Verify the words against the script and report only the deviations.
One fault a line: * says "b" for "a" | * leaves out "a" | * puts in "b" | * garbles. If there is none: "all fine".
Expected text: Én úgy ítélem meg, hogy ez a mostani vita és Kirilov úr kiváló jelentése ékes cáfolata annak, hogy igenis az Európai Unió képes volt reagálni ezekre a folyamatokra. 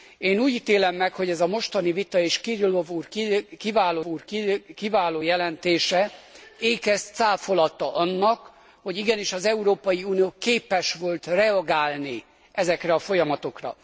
* puts in "úr kiváló"